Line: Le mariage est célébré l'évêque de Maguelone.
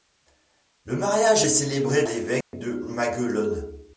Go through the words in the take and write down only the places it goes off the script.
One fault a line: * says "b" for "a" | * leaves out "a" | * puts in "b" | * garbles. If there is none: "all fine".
all fine